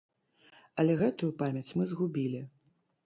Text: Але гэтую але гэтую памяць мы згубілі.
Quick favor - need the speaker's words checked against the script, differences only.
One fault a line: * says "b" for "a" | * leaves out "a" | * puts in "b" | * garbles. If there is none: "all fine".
* leaves out "але гэтую"